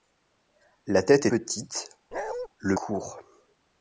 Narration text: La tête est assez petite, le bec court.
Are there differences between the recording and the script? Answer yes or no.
yes